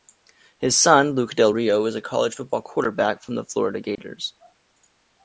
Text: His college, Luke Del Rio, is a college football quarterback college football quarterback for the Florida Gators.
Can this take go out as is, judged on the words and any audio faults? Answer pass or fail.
fail